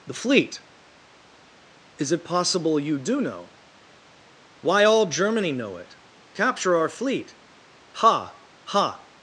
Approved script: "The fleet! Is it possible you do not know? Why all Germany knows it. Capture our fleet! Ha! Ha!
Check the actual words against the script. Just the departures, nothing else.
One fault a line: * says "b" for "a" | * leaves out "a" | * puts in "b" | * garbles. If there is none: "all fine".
* leaves out "not"
* says "know" for "knows"